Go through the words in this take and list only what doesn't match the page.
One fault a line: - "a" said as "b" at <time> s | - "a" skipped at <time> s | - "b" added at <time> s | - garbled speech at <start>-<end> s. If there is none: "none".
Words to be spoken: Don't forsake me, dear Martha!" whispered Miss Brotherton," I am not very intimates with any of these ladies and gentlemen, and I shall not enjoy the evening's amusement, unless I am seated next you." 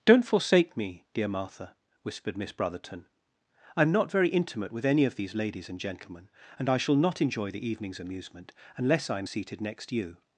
- "intimates" said as "intimate" at 4.3 s